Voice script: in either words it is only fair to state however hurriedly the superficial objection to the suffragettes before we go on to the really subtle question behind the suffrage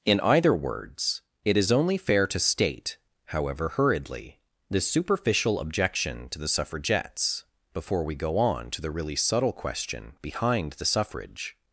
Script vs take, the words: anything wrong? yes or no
no